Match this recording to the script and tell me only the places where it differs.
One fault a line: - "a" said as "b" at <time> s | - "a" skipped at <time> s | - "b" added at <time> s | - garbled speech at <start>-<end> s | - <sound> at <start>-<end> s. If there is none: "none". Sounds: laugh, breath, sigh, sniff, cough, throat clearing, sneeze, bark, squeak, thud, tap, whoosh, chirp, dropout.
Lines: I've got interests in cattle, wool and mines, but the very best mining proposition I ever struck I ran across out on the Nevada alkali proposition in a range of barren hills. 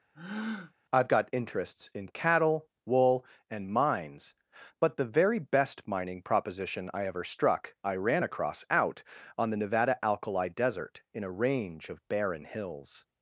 - breath at 0.1-0.7 s
- "proposition" said as "desert" at 10.5 s